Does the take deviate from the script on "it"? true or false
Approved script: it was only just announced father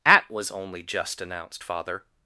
true